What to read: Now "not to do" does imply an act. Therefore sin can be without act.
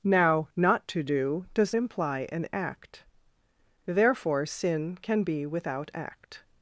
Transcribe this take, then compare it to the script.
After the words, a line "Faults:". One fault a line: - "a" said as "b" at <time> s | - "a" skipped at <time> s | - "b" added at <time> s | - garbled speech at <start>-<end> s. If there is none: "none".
Now "not to do" does imply an act. Therefore sin can be without act.
Faults:
none